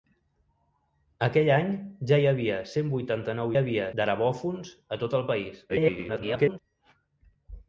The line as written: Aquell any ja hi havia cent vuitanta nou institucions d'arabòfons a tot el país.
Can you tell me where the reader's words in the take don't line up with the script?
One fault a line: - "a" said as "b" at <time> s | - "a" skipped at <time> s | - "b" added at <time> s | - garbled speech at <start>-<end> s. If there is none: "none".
- "institucions" said as "havia" at 3.6 s
- garbled speech at 5.7-6.6 s